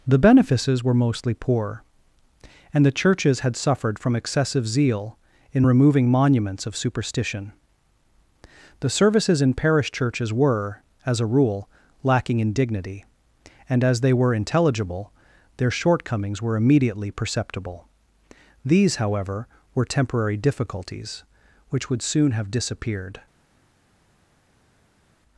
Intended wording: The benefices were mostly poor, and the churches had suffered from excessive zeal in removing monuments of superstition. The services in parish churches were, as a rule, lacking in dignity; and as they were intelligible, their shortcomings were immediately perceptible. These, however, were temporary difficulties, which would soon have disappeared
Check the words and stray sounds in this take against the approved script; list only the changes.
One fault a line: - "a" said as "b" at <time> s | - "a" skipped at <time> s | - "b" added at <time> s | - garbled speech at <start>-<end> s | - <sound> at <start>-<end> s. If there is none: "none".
none